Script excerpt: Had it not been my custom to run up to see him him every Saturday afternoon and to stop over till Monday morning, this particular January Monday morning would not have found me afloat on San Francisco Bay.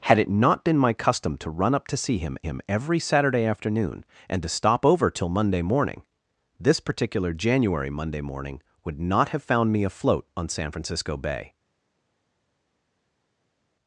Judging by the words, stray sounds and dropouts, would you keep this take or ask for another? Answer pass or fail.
pass